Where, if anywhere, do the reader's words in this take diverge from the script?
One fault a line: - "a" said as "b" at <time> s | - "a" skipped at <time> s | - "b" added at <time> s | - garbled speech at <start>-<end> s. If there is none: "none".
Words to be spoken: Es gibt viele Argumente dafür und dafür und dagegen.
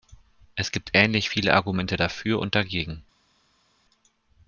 - "ähnlich" added at 0.9 s
- "dafür und" skipped at 2.5 s